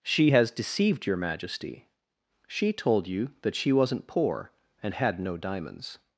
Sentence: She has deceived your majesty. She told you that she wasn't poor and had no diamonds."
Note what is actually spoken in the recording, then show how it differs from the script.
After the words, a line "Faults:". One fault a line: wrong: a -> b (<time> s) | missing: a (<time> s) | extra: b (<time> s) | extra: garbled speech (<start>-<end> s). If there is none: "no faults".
She has deceived your majesty. She told you that she wasn't poor and had no diamonds."
Faults:
no faults